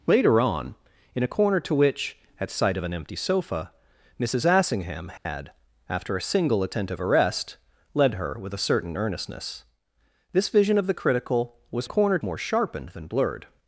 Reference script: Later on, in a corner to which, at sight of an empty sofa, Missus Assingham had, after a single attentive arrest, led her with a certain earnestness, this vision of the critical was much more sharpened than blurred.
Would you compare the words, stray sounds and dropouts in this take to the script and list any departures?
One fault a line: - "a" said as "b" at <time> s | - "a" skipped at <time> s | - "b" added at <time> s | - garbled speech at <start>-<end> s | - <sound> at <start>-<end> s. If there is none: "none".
- dropout at 5.2-5.3 s
- "much" said as "corner" at 11.8 s